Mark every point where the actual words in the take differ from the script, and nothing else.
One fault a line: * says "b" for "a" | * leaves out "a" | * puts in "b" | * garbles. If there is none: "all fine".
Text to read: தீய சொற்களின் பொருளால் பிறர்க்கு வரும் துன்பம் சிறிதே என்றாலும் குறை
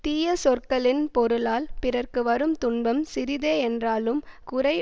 all fine